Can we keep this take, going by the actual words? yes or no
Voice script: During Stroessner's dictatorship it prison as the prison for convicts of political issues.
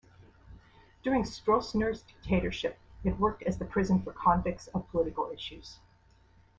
no